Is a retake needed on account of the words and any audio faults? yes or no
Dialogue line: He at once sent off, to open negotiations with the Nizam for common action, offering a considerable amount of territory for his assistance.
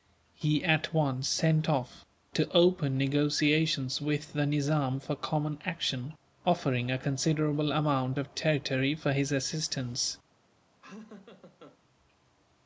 yes